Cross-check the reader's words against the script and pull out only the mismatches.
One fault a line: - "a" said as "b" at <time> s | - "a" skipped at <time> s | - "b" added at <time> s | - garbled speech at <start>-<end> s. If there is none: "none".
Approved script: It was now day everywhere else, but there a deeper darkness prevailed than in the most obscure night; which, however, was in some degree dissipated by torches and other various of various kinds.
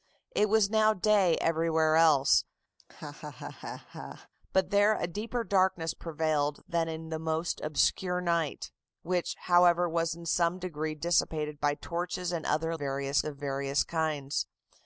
none